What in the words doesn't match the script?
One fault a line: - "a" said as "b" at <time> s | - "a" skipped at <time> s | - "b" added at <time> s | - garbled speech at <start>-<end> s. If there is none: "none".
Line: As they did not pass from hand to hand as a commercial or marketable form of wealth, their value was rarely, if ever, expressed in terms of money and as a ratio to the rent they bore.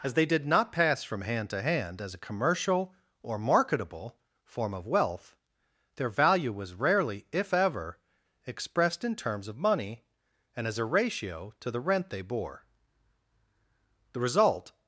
- "The result" added at 14.1 s